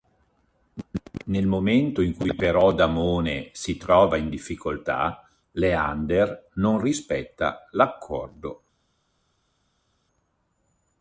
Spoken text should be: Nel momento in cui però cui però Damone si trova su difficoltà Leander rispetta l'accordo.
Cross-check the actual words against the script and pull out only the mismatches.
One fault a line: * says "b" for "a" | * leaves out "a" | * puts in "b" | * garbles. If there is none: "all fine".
* leaves out "cui però"
* says "in" for "su"
* puts in "non"